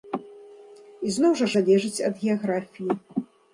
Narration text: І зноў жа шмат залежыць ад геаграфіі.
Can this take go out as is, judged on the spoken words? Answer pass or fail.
fail